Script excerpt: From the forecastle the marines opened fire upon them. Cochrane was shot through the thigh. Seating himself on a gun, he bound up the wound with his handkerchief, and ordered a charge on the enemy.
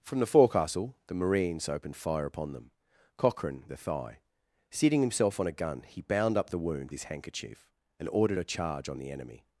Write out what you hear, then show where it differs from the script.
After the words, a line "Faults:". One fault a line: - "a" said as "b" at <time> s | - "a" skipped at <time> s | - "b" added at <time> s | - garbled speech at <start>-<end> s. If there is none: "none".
From the forecastle the marines opened fire upon them. Cochrane the thigh. Seating himself on a gun, he bound up the wound his handkerchief, and ordered a charge on the enemy.
Faults:
- "was shot through" skipped at 3.6 s
- "with" skipped at 6.9 s